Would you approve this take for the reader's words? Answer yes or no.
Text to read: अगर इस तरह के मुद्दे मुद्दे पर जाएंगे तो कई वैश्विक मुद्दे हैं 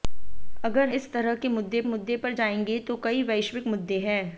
yes